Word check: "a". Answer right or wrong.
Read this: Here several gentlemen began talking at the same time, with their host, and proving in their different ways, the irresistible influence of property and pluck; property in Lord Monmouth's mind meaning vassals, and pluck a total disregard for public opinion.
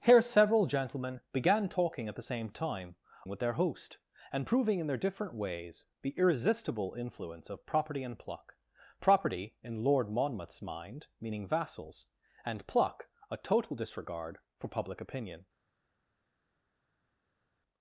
right